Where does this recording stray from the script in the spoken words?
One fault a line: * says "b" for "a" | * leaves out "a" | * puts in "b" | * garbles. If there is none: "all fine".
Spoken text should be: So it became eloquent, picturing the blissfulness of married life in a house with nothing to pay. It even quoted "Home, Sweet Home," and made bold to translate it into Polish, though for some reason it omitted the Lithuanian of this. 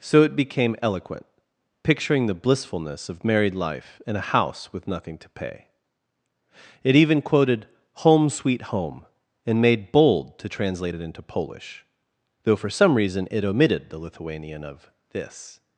all fine